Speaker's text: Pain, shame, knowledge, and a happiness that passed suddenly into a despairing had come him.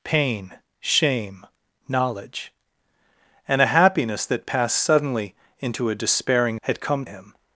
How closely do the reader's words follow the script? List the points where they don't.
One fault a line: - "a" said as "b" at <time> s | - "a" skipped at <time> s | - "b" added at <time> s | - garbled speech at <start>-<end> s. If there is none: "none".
none